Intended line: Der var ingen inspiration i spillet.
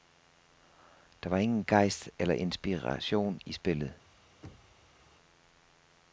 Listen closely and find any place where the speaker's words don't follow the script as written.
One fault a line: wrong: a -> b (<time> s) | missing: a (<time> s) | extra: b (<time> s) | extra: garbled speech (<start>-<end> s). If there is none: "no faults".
extra: gejst eller (1.6 s)